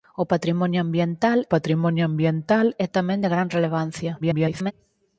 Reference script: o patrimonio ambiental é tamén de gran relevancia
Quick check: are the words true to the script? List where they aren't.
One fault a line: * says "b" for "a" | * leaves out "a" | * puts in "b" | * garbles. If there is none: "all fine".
* puts in "patrimonio ambiental"
* garbles